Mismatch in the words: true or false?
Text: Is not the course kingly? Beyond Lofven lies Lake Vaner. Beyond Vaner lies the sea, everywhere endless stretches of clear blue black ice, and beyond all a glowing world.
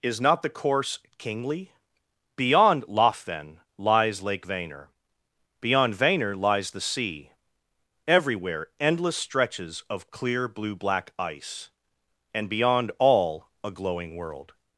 false